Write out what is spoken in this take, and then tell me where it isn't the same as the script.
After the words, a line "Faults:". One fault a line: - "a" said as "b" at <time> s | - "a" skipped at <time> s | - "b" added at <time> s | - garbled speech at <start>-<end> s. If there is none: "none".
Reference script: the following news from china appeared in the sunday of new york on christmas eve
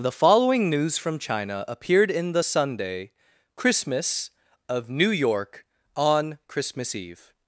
the following news from china appeared in the sunday christmas of new york on christmas eve
Faults:
- "christmas" added at 3.6 s